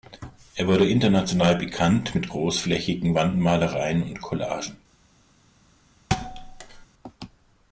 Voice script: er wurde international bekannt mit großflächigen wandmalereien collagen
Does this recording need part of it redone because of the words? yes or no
yes